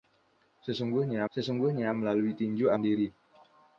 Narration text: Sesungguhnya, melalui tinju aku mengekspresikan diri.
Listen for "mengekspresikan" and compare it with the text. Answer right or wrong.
wrong